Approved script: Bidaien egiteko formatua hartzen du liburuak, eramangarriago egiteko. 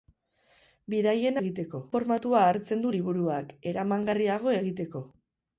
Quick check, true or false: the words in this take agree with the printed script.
true